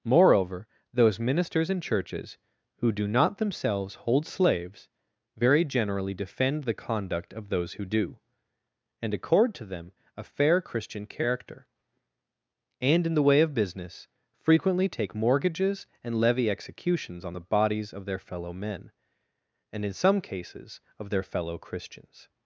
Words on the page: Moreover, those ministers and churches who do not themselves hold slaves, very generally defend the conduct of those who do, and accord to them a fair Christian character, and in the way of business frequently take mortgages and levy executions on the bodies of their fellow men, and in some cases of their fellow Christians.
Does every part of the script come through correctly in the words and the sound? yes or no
yes